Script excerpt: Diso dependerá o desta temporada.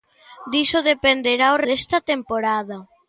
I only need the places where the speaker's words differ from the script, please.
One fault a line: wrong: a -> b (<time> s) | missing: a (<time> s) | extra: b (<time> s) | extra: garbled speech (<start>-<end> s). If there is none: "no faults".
no faults